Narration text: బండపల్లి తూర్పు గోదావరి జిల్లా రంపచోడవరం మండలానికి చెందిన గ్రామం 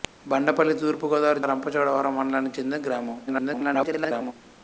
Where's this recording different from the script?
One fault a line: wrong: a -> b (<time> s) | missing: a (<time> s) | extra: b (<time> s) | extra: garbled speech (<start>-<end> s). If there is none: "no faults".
missing: జిల్లా (1.4 s)
extra: garbled speech (3.3-4.3 s)